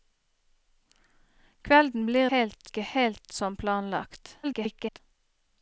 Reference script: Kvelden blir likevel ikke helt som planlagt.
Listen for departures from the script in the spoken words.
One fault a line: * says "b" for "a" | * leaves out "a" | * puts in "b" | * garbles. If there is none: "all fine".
* says "helt" for "likevel"
* garbles